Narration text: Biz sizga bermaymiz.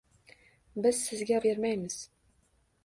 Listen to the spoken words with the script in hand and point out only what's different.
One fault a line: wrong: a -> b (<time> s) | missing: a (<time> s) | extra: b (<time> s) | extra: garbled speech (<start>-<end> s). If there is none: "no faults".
no faults